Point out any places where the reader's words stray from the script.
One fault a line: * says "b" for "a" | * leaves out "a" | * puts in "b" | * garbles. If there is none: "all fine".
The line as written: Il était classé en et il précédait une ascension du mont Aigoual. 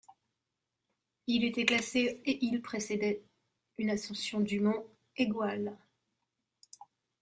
* leaves out "en"